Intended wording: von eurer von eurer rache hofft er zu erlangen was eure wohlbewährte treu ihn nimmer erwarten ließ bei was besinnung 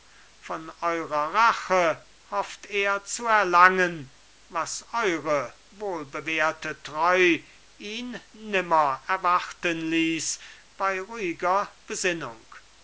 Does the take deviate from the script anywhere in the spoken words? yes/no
yes